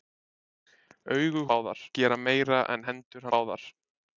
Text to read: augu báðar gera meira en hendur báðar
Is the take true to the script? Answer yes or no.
yes